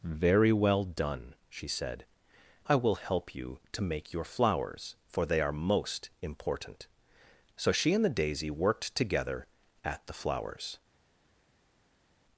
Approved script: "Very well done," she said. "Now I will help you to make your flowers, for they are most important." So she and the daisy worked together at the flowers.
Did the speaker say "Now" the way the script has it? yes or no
no